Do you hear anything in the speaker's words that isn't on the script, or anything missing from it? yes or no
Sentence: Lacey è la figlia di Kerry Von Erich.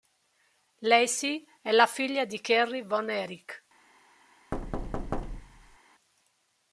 no